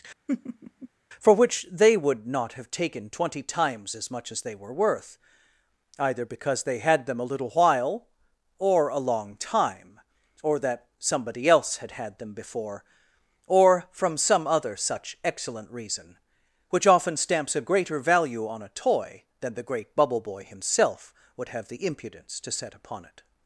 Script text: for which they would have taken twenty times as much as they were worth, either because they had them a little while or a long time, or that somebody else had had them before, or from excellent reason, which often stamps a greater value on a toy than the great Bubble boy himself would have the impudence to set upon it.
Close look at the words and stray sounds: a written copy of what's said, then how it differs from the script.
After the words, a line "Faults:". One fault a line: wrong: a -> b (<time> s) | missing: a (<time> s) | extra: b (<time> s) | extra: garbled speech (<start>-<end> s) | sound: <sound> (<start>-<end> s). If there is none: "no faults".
for which they would not have taken twenty times as much as they were worth, either because they had them a little while or a long time, or that somebody else had had them before, or from some other such excellent reason, which often stamps a greater value on a toy than the great Bubble boy himself would have the impudence to set upon it.
Faults:
sound: laugh (0.3-0.9 s)
extra: not (2.3 s)
extra: some other such (14.2 s)